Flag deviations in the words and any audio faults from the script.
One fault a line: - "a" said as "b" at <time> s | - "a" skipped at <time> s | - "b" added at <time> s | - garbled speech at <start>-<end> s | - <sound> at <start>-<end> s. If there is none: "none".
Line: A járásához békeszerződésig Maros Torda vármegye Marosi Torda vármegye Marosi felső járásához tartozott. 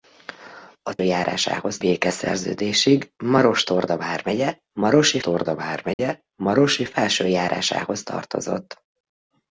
- dropout at 5.9-6.0 s